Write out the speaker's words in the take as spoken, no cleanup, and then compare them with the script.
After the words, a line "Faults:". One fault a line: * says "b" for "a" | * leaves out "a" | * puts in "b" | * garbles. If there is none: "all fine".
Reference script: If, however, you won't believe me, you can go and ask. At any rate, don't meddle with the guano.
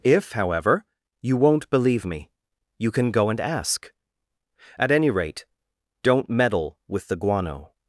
If, however, you won't believe me, you can go and ask. At any rate, don't meddle with the guano.
Faults:
all fine